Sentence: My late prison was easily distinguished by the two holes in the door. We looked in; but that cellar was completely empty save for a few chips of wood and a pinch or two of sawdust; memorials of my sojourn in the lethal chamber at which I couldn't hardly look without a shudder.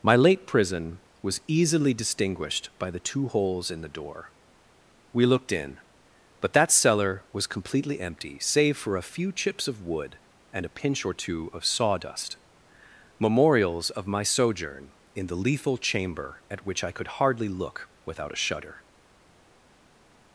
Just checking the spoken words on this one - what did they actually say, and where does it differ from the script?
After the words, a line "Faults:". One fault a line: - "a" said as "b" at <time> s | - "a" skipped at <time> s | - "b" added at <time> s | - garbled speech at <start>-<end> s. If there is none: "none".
My late prison was easily distinguished by the two holes in the door. We looked in; but that cellar was completely empty save for a few chips of wood and a pinch or two of sawdust; memorials of my sojourn in the lethal chamber at which I could hardly look without a shudder.
Faults:
- "couldn't" said as "could" at 16.9 s